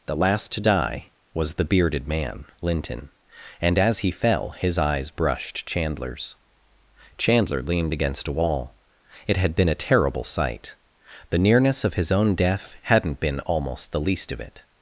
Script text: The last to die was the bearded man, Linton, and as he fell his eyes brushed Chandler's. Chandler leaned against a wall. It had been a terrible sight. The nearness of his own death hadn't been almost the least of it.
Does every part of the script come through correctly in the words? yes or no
yes